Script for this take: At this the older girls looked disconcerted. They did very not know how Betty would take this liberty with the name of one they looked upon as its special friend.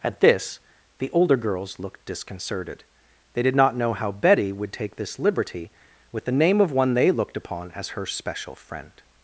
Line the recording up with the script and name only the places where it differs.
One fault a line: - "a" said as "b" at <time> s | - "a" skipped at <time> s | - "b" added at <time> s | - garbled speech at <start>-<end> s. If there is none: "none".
- "very" skipped at 3.5 s
- "its" said as "her" at 7.9 s